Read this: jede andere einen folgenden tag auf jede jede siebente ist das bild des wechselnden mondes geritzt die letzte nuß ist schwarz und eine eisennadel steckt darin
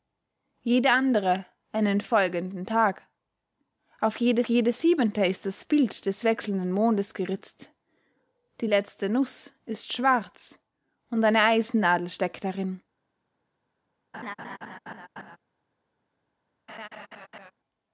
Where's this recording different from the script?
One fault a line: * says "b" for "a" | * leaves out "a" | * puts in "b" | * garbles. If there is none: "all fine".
all fine